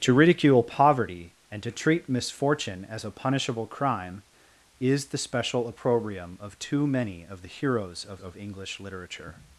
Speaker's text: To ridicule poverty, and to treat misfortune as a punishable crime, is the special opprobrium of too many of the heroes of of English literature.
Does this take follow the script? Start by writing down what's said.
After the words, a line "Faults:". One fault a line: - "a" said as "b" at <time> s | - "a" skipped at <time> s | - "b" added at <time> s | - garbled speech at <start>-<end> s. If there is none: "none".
To ridicule poverty, and to treat misfortune as a punishable crime, is the special opprobrium of too many of the heroes of of English literature.
Faults:
none